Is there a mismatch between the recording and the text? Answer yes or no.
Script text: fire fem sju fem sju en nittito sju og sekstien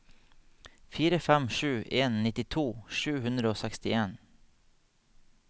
yes